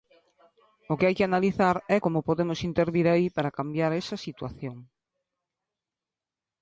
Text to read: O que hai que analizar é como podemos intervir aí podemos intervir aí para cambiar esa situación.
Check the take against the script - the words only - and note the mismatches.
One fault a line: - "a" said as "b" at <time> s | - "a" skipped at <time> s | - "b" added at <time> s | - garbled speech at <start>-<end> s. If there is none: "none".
- "podemos intervir aí" skipped at 3.3 s